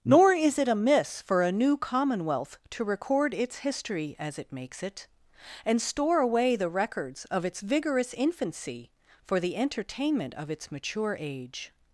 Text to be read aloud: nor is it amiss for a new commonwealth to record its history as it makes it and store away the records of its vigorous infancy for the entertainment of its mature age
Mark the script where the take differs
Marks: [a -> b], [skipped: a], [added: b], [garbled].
nor is it amiss for a new commonwealth to record its history as it makes it and store away the records of its vigorous infancy for the entertainment of its mature age